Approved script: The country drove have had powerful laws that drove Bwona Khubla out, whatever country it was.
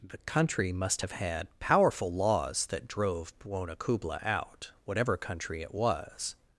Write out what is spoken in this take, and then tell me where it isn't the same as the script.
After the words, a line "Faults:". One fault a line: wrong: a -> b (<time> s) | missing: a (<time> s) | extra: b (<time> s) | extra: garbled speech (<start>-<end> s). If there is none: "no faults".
The country must have had powerful laws that drove Bwona Khubla out, whatever country it was.
Faults:
wrong: drove -> must (0.7 s)